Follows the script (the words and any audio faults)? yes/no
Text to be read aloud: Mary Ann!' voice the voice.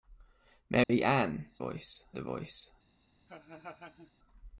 no